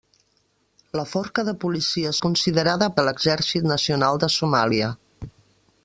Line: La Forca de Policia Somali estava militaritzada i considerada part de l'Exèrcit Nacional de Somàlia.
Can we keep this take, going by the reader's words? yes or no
no